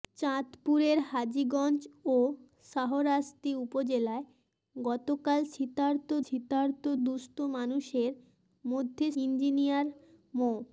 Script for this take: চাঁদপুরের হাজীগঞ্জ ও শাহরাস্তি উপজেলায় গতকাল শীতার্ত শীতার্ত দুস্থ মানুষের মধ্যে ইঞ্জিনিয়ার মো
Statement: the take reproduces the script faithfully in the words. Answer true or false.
true